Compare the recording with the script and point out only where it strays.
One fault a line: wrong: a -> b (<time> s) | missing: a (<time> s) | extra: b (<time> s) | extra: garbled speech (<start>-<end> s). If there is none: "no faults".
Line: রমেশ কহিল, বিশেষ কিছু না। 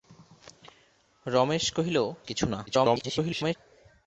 missing: বিশেষ (2.0 s)
extra: garbled speech (2.7-3.6 s)